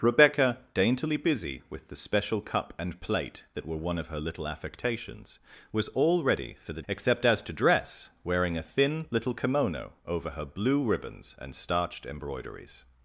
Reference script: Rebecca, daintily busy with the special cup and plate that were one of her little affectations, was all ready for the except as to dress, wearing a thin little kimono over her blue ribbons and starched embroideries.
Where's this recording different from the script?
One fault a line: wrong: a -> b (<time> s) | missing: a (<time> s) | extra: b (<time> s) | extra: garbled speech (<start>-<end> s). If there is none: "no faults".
no faults